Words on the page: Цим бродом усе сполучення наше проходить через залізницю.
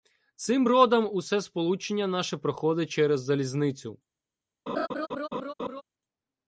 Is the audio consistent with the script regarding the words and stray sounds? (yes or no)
no